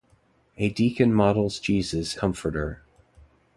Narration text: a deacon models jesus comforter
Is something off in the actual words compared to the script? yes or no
no